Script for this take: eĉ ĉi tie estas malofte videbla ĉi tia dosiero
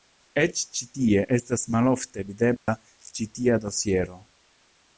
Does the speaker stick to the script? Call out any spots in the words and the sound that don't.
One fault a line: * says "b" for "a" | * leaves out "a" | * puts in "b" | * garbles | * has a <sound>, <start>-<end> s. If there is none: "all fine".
* has a dropout, 2.6-2.7 s